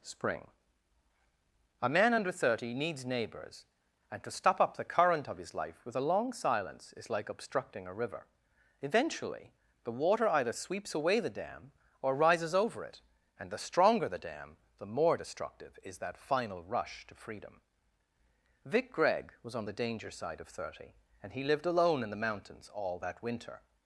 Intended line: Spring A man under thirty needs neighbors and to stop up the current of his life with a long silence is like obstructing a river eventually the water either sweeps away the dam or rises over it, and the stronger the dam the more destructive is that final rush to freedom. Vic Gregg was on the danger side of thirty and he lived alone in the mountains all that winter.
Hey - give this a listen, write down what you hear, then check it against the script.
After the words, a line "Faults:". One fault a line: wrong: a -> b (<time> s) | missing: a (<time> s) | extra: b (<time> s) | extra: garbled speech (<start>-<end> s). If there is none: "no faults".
Spring A man under thirty needs neighbors and to stop up the current of his life with a long silence is like obstructing a river eventually the water either sweeps away the dam or rises over it, and the stronger the dam the more destructive is that final rush to freedom. Vic Gregg was on the danger side of thirty and he lived alone in the mountains all that winter.
Faults:
no faults